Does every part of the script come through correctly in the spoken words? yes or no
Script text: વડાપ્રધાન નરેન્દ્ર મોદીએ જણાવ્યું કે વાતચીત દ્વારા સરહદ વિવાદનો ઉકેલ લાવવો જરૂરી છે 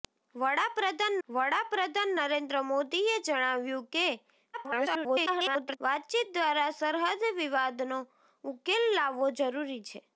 no